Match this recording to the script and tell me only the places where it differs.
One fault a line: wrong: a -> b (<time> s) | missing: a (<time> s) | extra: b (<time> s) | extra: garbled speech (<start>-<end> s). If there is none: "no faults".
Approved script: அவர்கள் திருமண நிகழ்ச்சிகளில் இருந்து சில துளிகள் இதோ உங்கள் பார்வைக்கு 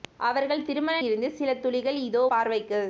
missing: நிகழ்ச்சிகளில் (0.9 s)
missing: உங்கள் (2.2 s)